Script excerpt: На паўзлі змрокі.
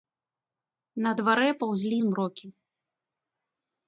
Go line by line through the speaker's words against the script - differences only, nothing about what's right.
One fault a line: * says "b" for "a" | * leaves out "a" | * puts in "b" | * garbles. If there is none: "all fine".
* puts in "дварэ"